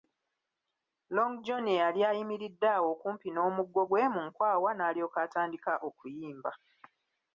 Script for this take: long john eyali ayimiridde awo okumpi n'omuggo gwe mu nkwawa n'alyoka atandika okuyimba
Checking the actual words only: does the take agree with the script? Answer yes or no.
yes